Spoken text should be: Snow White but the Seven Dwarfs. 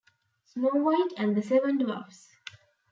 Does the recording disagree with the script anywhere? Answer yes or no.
yes